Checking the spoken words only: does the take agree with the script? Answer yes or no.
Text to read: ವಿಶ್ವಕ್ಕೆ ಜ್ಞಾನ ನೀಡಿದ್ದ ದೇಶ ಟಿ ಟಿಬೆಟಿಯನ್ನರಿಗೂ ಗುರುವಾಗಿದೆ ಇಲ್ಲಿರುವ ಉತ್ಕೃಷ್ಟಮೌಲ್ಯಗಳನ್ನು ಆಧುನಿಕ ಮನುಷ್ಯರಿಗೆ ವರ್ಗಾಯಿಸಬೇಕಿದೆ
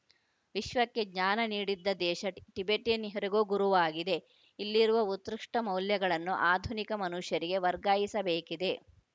yes